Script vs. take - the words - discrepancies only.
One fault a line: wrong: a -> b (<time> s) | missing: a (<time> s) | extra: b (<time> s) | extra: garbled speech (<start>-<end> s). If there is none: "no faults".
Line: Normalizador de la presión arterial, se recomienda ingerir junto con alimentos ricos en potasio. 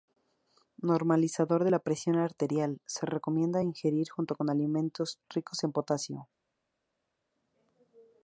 no faults